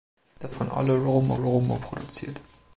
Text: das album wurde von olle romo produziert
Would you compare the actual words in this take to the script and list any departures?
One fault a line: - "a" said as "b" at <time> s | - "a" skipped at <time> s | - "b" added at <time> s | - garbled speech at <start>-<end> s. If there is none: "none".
- "album wurde" skipped at 0.6 s
- "romo" added at 1.3 s